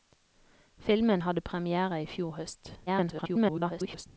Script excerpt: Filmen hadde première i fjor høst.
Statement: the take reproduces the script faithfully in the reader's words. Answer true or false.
false